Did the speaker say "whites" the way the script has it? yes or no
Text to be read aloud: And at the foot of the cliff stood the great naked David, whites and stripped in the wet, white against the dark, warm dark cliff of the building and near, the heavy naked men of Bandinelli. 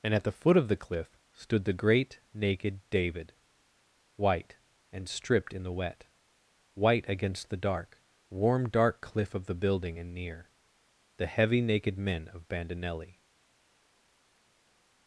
no